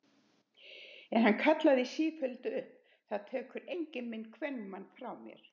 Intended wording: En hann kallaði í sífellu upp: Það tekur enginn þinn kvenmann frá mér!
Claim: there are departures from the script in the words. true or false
true